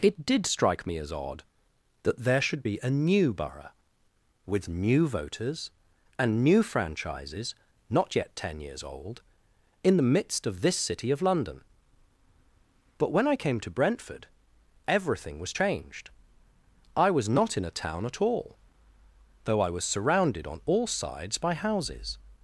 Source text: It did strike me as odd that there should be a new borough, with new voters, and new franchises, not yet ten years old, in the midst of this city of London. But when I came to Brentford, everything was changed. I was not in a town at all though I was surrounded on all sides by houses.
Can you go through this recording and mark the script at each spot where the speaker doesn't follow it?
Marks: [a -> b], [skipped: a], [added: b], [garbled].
It did strike me as odd that there should be a new borough, with new voters, and new franchises, not yet ten years old, in the midst of this city of London. But when I came to Brentford, everything was changed. I was not in a town at all though I was surrounded on all sides by houses.